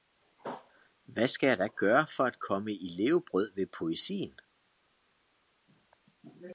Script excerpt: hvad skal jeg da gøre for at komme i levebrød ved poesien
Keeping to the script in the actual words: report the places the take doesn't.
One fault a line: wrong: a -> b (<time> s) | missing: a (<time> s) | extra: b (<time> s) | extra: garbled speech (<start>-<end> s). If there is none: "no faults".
no faults